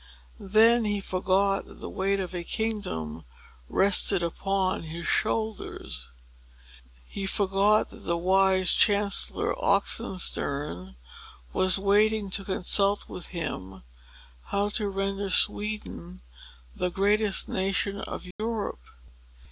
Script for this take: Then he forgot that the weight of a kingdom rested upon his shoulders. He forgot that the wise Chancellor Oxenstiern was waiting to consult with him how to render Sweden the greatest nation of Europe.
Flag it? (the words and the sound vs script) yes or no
yes